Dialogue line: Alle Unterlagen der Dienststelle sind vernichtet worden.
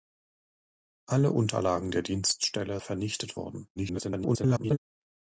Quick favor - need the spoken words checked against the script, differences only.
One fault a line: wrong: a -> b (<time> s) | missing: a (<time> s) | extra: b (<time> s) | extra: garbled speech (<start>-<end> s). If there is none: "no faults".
missing: sind (2.8 s)
extra: garbled speech (3.8-4.8 s)